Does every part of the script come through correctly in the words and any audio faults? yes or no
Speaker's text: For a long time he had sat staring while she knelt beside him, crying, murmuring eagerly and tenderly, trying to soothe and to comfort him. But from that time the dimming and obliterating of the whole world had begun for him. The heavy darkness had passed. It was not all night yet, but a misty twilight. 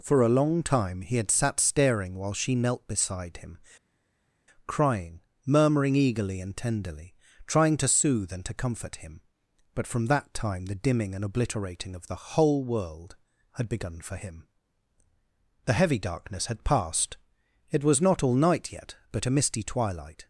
yes